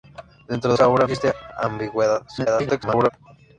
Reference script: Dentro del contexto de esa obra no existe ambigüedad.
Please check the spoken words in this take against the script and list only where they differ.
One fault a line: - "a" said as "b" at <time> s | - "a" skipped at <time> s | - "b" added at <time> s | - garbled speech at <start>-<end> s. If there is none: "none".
- "del contexto de" skipped at 0.7 s
- "no" skipped at 1.1 s
- garbled speech at 2.3-3.1 s